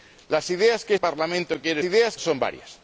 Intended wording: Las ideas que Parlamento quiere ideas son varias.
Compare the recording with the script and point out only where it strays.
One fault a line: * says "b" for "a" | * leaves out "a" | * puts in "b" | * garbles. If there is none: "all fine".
all fine